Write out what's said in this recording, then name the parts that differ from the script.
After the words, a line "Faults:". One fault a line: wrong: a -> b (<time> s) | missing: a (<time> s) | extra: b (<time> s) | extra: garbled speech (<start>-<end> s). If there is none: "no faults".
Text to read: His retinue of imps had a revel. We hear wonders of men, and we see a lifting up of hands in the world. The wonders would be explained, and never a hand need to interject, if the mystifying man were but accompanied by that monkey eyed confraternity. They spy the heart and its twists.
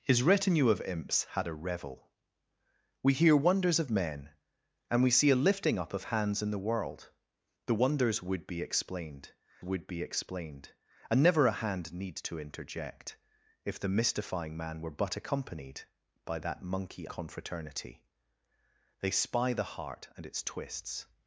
His retinue of imps had a revel. We hear wonders of men, and we see a lifting up of hands in the world. The wonders would be explained would be explained, and never a hand need to interject, if the mystifying man were but accompanied by that monkey confraternity. They spy the heart and its twists.
Faults:
extra: would be explained (9.6 s)
missing: eyed (17.1 s)